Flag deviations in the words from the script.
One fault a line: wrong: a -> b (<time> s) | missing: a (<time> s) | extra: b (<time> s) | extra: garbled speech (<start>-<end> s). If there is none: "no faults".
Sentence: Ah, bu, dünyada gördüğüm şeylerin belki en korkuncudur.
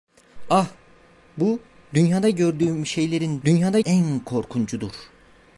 wrong: belki -> dünyada (3.4 s)